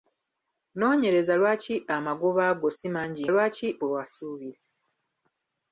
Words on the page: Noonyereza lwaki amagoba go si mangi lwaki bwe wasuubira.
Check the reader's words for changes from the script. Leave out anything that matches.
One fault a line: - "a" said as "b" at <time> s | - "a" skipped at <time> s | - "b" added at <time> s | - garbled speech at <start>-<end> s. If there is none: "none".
none